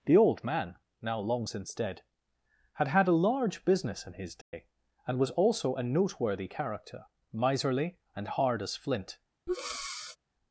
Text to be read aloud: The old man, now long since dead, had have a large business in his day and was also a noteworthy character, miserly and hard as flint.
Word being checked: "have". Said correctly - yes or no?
no